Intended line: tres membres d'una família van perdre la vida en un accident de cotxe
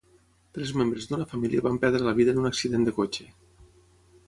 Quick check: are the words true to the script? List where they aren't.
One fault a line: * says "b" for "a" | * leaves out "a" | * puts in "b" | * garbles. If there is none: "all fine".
all fine